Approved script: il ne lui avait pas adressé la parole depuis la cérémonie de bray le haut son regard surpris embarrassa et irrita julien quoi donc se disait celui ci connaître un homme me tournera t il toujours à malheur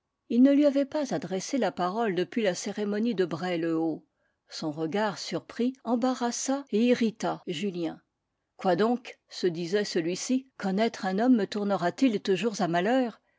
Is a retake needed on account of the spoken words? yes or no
no